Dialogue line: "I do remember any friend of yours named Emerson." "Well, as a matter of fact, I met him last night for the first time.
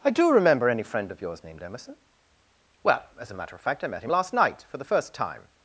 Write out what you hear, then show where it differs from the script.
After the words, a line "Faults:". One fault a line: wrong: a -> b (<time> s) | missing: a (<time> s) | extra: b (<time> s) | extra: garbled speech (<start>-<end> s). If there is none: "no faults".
"I do remember any friend of yours named Emerson." "Well, as a matter of fact, I met him last night for the first time.
Faults:
no faults